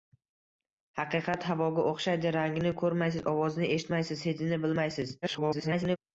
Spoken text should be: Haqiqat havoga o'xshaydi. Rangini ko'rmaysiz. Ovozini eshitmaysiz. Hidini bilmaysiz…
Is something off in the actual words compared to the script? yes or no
yes